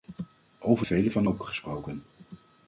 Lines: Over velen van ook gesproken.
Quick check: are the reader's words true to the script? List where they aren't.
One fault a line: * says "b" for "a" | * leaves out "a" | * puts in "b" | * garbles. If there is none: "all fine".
all fine